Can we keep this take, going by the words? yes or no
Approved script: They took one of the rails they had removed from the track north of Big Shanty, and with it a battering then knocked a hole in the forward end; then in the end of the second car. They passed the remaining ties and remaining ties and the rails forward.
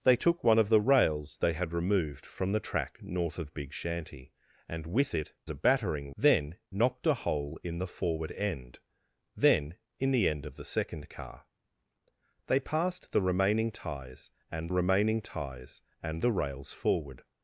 yes